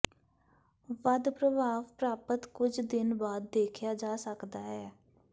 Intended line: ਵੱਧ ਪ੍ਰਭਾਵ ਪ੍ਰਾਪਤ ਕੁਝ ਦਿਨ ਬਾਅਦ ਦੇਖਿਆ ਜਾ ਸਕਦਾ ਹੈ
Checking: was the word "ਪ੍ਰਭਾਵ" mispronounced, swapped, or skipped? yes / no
no